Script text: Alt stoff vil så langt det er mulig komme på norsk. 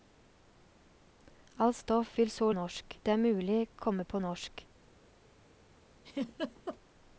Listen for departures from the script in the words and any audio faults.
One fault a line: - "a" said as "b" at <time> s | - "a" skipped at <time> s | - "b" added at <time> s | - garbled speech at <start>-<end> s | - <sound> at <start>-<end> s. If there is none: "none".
- "langt" said as "norsk" at 2.5 s
- laugh at 6.0-6.8 s